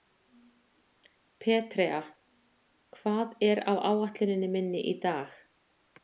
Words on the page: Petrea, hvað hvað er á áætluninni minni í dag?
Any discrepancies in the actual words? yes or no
yes